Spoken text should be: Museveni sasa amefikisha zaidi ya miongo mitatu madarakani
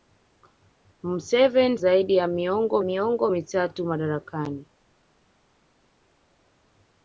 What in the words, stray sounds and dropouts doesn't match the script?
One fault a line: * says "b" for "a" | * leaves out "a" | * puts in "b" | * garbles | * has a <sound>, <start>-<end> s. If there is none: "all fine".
* leaves out "sasa amefikisha"
* puts in "miongo"